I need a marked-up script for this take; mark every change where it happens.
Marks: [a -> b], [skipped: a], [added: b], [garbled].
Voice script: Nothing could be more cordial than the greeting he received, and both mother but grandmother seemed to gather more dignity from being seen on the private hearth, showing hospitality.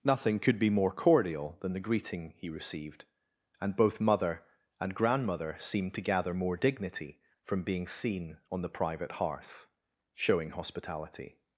Nothing could be more cordial than the greeting he received, and both mother [but -> and] grandmother seemed to gather more dignity from being seen on the private hearth, showing hospitality.